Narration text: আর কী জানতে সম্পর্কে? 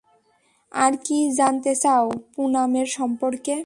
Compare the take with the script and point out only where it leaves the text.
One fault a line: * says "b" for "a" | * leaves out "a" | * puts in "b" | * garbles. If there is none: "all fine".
* puts in "চাও পুনামের"